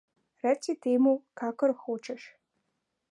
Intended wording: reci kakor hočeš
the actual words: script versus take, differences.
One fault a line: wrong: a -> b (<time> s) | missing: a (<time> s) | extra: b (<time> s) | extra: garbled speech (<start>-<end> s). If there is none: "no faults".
extra: temu (0.9 s)